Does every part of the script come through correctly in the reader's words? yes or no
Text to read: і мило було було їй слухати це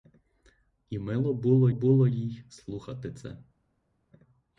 yes